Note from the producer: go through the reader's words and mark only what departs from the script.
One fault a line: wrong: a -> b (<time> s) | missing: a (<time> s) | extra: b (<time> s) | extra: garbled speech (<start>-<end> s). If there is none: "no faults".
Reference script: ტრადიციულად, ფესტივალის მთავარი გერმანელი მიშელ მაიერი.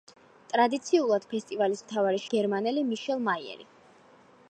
no faults